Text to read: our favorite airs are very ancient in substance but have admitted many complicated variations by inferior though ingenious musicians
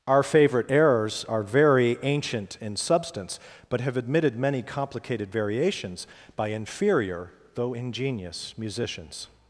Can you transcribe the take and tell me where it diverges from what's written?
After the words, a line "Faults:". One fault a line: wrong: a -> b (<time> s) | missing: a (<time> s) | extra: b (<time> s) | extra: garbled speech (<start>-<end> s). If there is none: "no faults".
our favorite errors are very ancient in substance but have admitted many complicated variations by inferior though ingenious musicians
Faults:
wrong: airs -> errors (0.7 s)